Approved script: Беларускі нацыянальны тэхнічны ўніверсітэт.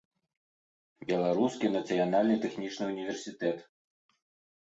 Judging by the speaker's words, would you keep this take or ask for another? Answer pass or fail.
pass